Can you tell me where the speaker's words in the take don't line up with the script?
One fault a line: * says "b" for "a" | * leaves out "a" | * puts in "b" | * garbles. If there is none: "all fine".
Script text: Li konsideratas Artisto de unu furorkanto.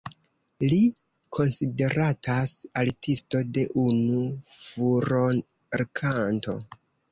all fine